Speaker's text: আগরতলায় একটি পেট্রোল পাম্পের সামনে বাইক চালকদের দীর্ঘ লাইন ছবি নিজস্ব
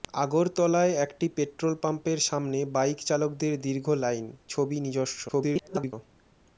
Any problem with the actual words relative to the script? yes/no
yes